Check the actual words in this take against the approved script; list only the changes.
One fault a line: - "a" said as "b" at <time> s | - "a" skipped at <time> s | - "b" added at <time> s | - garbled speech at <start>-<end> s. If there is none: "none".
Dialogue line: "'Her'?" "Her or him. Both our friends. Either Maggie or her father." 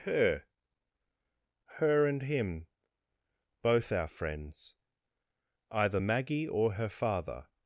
- "or" said as "and" at 2.1 s